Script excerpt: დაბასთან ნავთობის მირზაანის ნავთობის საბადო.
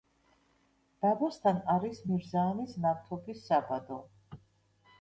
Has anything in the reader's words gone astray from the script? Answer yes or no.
yes